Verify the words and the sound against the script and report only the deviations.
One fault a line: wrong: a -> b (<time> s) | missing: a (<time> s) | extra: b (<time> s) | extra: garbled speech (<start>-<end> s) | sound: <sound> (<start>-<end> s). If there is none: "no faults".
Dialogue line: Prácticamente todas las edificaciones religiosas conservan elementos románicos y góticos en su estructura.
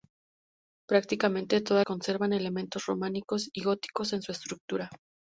missing: las edificaciones religiosas (1.9 s)